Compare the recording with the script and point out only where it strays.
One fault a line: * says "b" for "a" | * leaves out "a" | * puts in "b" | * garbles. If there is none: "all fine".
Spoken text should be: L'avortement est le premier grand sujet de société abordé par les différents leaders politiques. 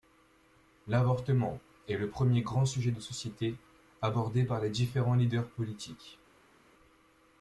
all fine